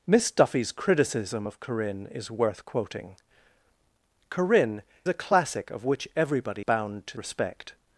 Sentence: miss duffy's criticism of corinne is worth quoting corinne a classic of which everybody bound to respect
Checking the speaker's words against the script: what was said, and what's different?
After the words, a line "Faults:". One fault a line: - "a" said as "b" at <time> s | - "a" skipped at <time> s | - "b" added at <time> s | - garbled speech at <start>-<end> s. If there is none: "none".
miss duffy's criticism of corinne is worth quoting corinne a classic of which everybody bound to respect
Faults:
none